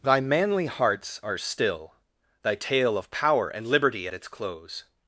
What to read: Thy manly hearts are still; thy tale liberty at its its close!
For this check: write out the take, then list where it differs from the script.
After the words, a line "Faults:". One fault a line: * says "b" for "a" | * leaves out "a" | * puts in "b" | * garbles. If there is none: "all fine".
Thy manly hearts are still; thy tale of power and liberty at its close!
Faults:
* puts in "of power and"
* leaves out "its"